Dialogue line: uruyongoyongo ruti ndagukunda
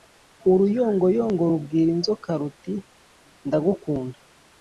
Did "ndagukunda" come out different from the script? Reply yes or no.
no